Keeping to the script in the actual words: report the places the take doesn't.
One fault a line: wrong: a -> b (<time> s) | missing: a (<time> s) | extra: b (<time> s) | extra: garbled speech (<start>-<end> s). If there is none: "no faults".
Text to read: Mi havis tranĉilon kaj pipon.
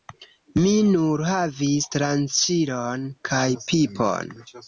extra: nur (0.9 s)